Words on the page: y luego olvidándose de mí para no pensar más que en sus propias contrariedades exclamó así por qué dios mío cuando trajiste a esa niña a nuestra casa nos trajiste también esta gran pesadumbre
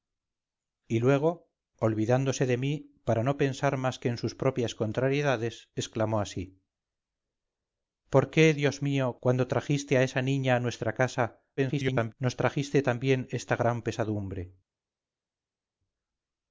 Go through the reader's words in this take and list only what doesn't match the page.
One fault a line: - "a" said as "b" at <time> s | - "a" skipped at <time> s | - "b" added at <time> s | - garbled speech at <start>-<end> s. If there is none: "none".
- garbled speech at 11.6-12.1 s